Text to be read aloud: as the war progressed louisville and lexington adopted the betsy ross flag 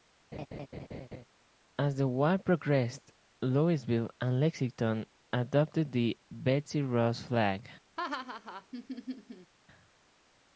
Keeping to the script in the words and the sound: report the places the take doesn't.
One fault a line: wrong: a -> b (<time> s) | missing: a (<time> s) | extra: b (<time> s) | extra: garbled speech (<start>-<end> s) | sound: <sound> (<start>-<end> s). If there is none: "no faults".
sound: laugh (0.3-1.3 s)
sound: laugh (8.0-9.5 s)